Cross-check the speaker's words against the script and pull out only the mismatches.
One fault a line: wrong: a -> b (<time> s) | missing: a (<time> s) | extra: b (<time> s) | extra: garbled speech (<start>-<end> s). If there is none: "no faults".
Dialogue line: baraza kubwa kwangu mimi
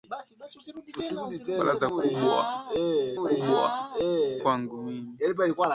extra: kubwa (3.2 s)